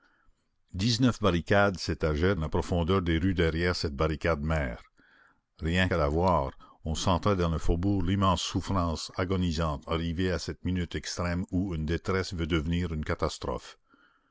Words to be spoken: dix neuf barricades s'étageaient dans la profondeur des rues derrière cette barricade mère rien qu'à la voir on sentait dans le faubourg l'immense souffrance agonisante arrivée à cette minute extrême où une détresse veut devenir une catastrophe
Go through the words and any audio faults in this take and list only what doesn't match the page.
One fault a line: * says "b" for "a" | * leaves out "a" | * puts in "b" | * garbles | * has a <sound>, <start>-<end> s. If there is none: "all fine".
* leaves out "dans"